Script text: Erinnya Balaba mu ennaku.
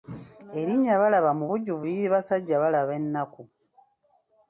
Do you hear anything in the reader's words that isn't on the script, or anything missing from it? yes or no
yes